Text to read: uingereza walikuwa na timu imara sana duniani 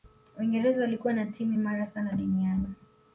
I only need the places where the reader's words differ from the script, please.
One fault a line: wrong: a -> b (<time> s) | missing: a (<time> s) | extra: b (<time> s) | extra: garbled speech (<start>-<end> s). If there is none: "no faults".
no faults